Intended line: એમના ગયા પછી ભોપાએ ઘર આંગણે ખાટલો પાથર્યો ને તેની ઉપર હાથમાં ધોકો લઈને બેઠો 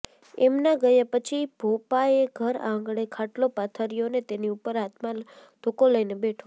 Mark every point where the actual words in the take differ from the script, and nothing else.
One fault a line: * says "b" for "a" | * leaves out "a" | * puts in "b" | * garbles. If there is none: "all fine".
all fine